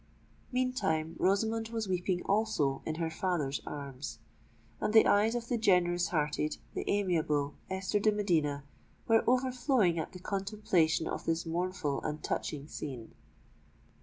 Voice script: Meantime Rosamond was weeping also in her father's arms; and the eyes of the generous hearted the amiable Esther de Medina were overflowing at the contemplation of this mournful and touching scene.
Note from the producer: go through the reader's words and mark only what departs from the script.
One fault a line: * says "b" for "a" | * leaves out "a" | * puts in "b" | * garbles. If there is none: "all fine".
all fine